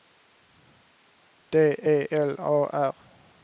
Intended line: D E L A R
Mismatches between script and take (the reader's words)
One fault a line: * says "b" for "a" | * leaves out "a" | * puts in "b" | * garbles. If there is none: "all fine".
all fine